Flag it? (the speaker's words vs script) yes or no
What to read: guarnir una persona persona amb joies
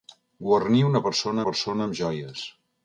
no